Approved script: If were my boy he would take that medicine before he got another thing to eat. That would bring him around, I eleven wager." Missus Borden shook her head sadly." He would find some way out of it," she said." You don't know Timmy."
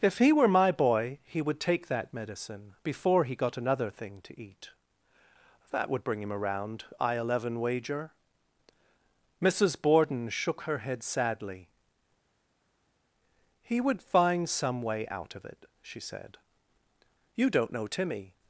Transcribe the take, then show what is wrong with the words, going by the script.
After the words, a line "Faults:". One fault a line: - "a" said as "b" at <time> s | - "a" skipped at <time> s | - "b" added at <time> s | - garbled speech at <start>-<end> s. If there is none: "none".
If he were my boy he would take that medicine before he got another thing to eat. That would bring him around, I eleven wager." Missus Borden shook her head sadly." He would find some way out of it," she said." You don't know Timmy."
Faults:
- "he" added at 0.2 s